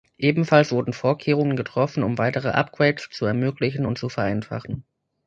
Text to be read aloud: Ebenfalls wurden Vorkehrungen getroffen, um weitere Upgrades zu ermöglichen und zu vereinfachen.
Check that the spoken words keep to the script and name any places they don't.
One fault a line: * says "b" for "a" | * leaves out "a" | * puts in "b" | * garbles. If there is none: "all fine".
all fine